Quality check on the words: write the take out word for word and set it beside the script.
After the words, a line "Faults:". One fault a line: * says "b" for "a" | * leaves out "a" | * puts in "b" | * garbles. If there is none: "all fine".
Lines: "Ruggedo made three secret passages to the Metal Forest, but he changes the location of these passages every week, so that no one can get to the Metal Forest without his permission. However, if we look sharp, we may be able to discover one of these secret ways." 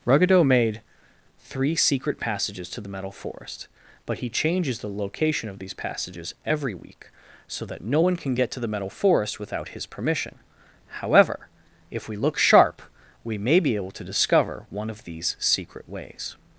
"Ruggedo made three secret passages to the Metal Forest, but he changes the location of these passages every week, so that no one can get to the Metal Forest without his permission. However, if we look sharp, we may be able to discover one of these secret ways."
Faults:
all fine